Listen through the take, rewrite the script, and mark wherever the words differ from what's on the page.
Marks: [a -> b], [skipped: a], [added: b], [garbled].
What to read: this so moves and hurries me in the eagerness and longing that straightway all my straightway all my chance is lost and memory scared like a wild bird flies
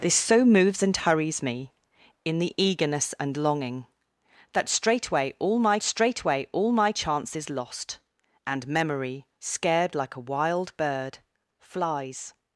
this so moves and hurries me in the eagerness and longing that straightway all my straightway all my chance is lost and memory scared like a wild bird flies